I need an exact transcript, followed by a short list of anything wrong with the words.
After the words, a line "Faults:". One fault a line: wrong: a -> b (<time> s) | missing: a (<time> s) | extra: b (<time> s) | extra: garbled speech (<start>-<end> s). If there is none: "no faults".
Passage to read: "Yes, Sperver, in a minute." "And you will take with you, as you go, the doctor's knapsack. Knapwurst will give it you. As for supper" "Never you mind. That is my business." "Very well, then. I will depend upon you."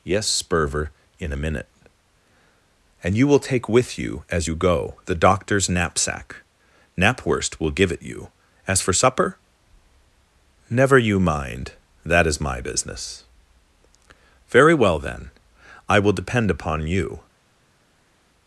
"Yes, Sperver, in a minute." "And you will take with you, as you go, the doctor's knapsack. Knapwurst will give it you. As for supper" "Never you mind. That is my business." "Very well, then. I will depend upon you."
Faults:
no faults